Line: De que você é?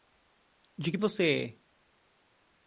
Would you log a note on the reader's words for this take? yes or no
no